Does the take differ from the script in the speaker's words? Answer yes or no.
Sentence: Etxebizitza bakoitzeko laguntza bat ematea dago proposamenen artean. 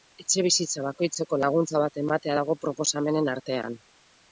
no